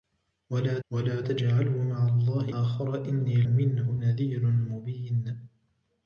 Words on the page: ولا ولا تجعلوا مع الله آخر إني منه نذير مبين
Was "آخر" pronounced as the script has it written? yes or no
yes